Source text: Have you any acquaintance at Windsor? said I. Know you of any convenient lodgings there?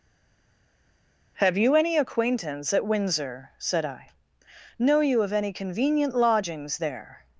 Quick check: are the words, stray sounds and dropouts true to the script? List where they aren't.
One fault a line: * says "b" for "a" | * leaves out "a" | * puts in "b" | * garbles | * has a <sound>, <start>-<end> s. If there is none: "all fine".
all fine